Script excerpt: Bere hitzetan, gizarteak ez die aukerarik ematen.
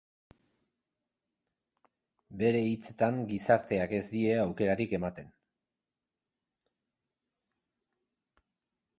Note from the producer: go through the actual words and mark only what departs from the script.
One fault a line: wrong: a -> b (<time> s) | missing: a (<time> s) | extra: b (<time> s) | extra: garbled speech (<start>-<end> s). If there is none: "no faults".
no faults